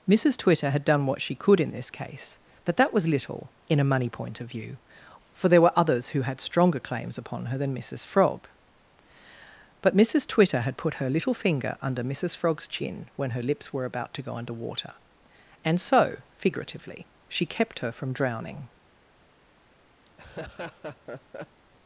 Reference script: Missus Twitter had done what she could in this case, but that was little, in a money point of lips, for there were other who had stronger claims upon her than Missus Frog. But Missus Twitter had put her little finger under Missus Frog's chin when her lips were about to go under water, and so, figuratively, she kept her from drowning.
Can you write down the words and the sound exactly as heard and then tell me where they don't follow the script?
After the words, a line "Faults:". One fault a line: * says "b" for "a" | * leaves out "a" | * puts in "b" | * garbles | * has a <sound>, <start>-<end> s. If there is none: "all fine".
Missus Twitter had done what she could in this case, but that was little, in a money point of view, for there were others who had stronger claims upon her than Missus Frog. But Missus Twitter had put her little finger under Missus Frog's chin when her lips were about to go under water, and so, figuratively, she kept her from drowning.
Faults:
* says "view" for "lips"
* says "others" for "other"
* has a laugh, 20.1-21.6 s